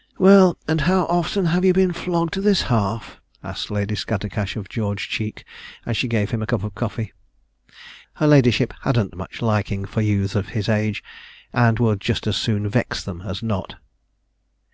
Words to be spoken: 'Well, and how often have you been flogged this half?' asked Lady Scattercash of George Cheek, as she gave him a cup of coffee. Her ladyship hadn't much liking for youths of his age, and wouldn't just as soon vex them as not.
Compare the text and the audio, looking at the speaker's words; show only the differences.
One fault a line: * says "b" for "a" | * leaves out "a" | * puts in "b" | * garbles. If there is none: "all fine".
* says "would" for "wouldn't"